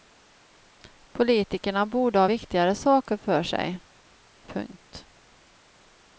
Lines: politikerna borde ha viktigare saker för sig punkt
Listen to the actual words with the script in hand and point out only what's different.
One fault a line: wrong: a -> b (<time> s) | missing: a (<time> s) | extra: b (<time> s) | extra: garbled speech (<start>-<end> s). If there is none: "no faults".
no faults